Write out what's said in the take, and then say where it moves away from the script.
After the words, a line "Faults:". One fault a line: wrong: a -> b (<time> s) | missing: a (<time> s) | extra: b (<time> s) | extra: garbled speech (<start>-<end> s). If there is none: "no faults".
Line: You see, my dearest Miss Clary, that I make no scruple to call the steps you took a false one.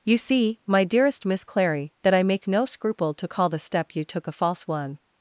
You see, my dearest Miss Clary, that I make no scruple to call the step you took a false one.
Faults:
wrong: steps -> step (3.6 s)